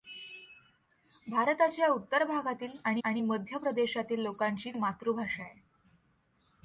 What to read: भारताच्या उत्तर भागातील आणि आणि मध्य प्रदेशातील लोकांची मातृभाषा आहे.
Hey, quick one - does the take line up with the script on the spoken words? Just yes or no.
yes